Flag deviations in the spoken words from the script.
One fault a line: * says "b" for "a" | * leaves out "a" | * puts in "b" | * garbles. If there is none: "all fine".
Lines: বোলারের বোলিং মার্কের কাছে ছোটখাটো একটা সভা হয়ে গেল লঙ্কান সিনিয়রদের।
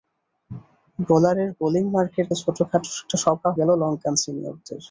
* leaves out "কাছে"
* leaves out "হয়ে"